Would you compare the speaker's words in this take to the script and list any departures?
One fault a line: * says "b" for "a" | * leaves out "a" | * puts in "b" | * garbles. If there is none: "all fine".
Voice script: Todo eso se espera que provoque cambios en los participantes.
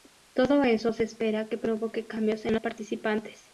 * leaves out "los"